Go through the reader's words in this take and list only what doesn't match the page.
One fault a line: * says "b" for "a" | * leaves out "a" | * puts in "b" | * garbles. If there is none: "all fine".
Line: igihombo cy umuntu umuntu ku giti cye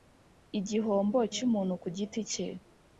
* leaves out "umuntu"